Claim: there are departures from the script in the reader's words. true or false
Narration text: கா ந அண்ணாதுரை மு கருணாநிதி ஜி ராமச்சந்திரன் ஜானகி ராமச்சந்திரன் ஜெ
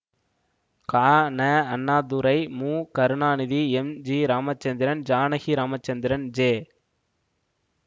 true